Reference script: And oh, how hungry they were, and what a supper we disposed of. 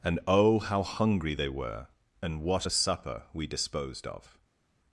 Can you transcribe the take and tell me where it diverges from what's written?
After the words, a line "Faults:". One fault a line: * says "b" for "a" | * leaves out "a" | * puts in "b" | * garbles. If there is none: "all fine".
And oh, how hungry they were, and what a supper we disposed of.
Faults:
all fine